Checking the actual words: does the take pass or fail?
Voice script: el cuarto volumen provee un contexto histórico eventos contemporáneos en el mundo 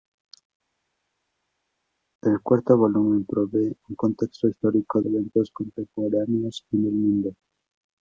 pass